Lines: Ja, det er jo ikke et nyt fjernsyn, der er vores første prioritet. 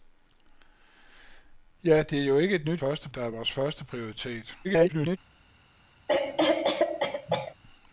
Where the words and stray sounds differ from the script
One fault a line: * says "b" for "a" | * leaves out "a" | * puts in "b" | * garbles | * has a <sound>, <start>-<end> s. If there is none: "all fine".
* says "første" for "fjernsyn"
* garbles
* has a cough, 6.1-7.5 s